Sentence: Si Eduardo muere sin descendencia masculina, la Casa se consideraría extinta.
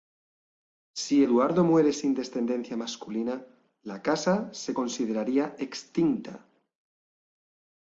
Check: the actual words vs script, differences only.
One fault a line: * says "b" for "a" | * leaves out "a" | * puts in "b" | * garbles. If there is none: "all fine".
all fine